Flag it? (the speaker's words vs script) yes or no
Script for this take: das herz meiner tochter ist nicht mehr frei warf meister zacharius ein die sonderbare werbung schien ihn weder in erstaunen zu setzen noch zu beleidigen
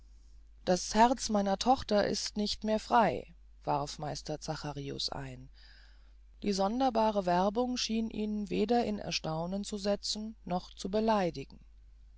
no